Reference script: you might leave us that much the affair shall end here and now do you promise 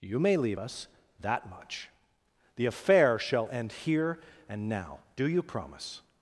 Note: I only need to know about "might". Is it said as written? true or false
false